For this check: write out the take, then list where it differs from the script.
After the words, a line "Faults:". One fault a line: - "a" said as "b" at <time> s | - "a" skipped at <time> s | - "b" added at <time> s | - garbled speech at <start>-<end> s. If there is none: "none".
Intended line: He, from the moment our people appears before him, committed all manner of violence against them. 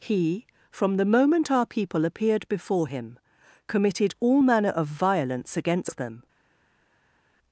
He, from the moment our people appeared before him, committed all manner of violence against them.
Faults:
- "appears" said as "appeared" at 2.0 s